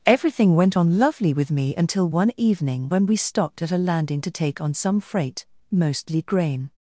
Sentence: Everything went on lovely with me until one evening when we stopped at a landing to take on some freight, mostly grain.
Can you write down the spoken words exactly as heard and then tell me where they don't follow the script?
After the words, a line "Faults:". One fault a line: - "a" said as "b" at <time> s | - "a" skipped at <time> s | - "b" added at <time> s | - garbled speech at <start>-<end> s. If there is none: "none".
Everything went on lovely with me until one evening when we stopped at a landing to take on some freight, mostly grain.
Faults:
none